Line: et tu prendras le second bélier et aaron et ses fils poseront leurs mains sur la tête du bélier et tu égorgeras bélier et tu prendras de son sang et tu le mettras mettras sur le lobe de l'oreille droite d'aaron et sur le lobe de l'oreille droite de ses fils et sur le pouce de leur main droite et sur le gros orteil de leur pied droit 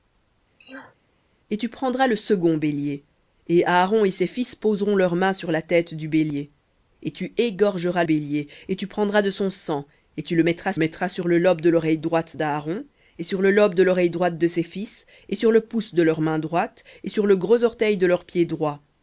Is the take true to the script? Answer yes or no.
yes